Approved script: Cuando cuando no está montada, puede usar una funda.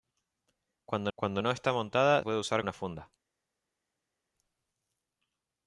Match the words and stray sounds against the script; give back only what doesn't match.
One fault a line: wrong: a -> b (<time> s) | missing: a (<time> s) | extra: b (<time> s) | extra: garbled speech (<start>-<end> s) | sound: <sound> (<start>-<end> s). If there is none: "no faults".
no faults